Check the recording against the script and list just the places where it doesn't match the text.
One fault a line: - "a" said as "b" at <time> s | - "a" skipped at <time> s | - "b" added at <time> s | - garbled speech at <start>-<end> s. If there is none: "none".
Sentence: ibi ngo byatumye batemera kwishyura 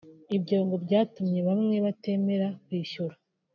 - "ibi" said as "ibyo" at 0.4 s
- "bamwe" added at 1.5 s